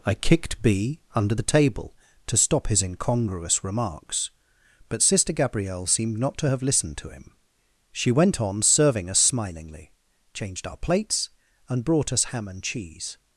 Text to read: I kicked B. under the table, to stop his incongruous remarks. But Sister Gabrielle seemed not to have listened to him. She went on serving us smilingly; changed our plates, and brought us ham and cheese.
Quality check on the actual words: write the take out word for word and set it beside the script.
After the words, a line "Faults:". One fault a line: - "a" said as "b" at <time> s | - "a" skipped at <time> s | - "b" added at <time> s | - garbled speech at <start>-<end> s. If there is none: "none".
I kicked B. under the table, to stop his incongruous remarks. But Sister Gabrielle seemed not to have listened to him. She went on serving us smilingly; changed our plates, and brought us ham and cheese.
Faults:
none